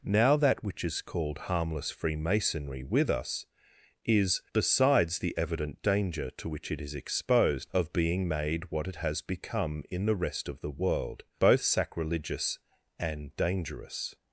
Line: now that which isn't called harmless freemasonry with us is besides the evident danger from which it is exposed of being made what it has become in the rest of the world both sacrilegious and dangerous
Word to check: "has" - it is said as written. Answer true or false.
true